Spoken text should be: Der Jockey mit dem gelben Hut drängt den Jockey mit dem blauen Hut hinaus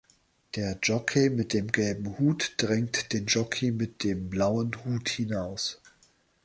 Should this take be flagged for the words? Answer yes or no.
no